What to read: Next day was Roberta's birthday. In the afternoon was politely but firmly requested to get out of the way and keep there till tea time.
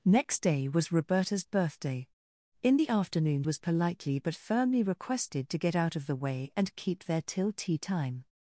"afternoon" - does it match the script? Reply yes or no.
yes